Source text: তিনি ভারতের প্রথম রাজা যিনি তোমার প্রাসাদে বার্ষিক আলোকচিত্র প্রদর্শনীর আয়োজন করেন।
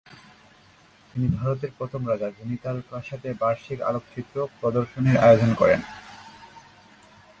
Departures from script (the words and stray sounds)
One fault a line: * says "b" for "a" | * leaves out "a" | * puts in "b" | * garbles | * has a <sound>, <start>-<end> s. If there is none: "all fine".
* says "তার" for "তোমার"